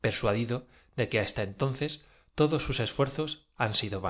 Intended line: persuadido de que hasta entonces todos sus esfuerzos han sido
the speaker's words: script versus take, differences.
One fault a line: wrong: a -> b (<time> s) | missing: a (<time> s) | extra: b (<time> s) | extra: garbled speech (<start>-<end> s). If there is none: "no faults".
no faults